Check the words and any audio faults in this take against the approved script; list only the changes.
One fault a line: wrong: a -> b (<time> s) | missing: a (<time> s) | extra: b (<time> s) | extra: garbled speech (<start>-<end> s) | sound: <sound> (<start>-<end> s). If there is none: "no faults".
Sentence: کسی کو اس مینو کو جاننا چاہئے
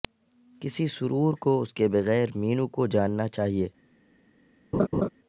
extra: سرور (0.9 s)
extra: کے بغیر (1.7 s)
sound: laugh (4.7-5.1 s)